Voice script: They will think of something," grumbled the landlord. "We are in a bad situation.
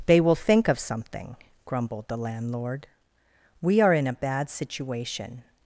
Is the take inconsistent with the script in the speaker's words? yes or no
no